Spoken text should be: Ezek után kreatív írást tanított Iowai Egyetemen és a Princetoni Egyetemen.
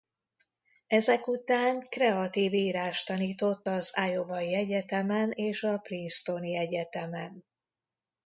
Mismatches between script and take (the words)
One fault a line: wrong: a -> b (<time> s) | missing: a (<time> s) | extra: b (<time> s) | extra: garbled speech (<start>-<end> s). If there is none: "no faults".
extra: az (3.7 s)